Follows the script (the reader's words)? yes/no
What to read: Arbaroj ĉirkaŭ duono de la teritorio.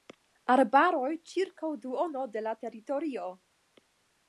yes